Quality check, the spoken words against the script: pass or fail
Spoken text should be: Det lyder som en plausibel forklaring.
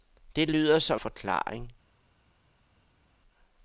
fail